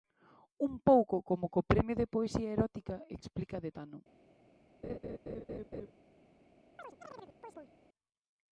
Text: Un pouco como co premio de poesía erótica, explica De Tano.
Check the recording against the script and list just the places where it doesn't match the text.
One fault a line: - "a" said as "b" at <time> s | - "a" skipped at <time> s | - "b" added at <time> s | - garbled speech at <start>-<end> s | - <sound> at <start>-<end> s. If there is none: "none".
- laugh at 4.8-5.9 s
- chirp at 6.8-7.7 s